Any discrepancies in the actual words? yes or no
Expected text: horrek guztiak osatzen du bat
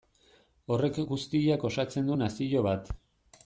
yes